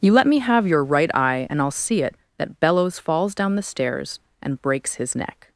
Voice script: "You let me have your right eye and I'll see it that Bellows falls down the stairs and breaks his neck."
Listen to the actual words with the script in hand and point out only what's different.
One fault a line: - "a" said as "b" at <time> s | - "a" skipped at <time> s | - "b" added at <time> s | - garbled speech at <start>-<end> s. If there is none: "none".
none